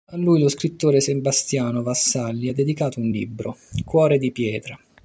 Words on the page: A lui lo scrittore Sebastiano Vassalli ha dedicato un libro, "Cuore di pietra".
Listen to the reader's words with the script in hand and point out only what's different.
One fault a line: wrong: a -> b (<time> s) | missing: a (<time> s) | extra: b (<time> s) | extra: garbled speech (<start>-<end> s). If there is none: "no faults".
no faults